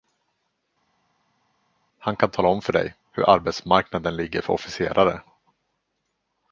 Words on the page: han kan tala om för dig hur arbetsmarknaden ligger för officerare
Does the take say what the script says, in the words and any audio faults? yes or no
yes